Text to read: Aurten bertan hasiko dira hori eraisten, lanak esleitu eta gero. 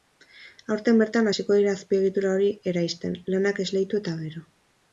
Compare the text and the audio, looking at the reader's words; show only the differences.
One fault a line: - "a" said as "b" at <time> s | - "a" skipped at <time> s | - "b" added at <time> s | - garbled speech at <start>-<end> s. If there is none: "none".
- "azpiegitura" added at 1.8 s